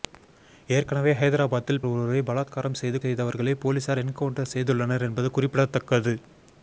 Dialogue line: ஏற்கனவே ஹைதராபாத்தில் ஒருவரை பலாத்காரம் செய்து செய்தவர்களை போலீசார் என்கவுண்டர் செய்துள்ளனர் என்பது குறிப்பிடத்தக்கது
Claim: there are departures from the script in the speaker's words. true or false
false